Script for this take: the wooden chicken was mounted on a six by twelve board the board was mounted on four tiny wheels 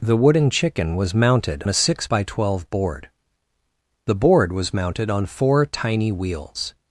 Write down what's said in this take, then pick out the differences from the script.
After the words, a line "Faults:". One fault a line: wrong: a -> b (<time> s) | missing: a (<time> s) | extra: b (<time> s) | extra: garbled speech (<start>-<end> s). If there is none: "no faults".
the wooden chicken was mounted a six by twelve board the board was mounted on four tiny wheels
Faults:
missing: on (1.6 s)